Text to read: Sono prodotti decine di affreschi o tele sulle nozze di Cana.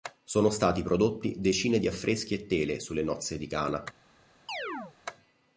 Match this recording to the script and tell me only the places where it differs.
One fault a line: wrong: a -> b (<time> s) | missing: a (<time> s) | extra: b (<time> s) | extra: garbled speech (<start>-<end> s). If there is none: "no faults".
extra: stati (0.5 s)
wrong: o -> e (2.3 s)